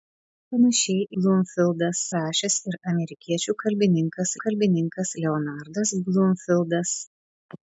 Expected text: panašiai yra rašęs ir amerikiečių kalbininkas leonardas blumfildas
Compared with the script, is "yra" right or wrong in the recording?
wrong